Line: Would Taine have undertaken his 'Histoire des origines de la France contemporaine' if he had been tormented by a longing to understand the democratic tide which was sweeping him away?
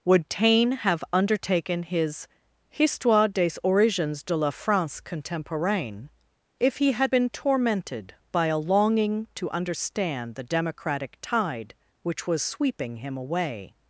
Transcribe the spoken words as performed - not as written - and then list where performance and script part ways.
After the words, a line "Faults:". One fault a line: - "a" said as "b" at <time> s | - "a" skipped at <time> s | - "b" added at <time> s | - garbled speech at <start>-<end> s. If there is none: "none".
Would Taine have undertaken his 'Histoire des origines de la France contemporaine' if he had been tormented by a longing to understand the democratic tide which was sweeping him away?
Faults:
none